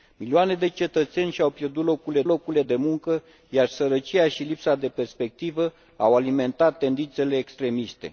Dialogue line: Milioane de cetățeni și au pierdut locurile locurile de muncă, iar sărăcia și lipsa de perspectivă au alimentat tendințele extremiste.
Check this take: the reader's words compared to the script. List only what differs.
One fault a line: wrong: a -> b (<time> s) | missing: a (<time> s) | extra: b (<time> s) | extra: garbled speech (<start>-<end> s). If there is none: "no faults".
no faults